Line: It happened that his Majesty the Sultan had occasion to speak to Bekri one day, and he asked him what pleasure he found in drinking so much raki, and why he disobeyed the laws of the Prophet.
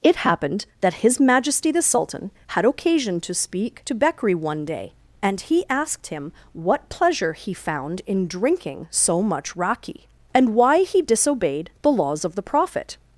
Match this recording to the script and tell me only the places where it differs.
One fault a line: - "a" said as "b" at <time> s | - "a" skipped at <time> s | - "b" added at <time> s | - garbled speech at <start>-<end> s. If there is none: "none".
none